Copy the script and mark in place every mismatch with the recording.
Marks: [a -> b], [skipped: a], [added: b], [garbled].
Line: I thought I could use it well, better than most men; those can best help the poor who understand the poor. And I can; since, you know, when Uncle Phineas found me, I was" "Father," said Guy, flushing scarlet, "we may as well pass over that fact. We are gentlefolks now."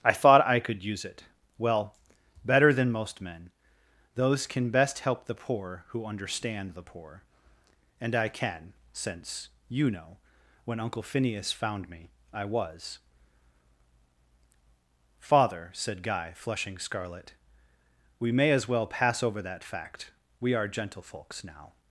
I thought I could use it well, better than most men; those can best help the poor who understand the poor. And I can; since, you know, when Uncle Phineas found me, I was" "Father," said Guy, flushing scarlet, "we may as well pass over that fact. We are gentlefolks now."